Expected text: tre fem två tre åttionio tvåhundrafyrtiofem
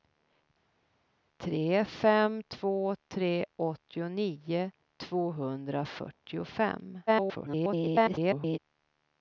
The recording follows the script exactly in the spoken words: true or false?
false